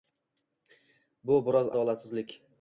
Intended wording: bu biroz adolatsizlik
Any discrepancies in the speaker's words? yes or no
no